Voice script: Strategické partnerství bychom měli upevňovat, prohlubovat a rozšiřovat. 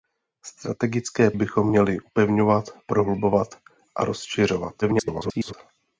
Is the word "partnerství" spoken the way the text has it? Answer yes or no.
no